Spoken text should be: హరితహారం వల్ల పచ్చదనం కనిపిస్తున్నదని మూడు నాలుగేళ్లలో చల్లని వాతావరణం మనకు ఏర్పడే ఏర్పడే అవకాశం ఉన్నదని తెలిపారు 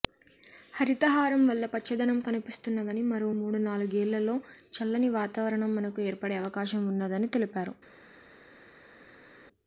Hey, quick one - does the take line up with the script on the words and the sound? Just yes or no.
no